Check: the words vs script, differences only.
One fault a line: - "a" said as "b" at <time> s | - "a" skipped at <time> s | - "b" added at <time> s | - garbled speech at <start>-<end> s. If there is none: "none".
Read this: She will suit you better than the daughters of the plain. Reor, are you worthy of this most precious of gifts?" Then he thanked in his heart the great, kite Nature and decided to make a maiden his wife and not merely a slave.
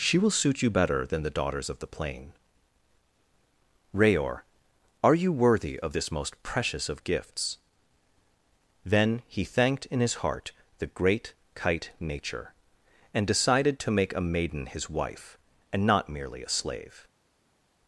none